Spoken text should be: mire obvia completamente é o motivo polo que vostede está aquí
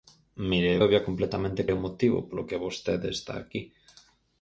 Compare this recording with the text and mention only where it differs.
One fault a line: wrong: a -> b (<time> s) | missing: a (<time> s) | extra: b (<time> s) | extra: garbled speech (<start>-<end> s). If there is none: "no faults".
no faults